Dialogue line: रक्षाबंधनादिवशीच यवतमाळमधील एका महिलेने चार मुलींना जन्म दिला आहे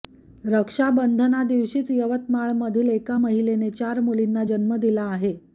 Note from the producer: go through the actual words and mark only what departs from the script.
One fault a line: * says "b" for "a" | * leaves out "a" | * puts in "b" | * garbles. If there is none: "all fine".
all fine